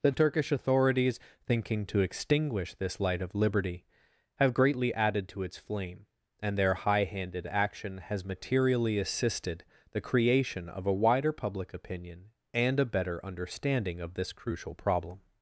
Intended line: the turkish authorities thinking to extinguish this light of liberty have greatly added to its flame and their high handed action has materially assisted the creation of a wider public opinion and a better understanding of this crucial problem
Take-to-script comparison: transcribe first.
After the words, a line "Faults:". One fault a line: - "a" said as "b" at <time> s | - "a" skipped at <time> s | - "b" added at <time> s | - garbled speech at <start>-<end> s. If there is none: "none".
the turkish authorities thinking to extinguish this light of liberty have greatly added to its flame and their high handed action has materially assisted the creation of a wider public opinion and a better understanding of this crucial problem
Faults:
none